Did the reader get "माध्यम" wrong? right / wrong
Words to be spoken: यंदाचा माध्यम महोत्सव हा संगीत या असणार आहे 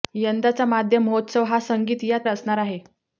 right